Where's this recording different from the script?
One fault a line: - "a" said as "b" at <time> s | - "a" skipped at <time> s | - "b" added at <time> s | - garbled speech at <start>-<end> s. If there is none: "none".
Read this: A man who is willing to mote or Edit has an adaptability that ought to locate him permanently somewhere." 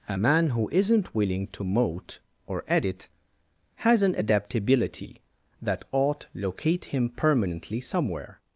- "is" said as "isn't" at 0.7 s
- "to" skipped at 6.3 s